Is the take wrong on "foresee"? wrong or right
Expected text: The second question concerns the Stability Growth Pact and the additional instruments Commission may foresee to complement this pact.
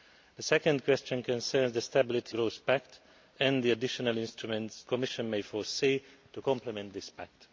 right